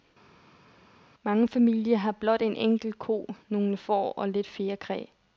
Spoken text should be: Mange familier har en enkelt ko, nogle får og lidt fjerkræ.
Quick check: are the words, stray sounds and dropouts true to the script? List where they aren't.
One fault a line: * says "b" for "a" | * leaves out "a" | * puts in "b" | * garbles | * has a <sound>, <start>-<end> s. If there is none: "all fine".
* puts in "blot"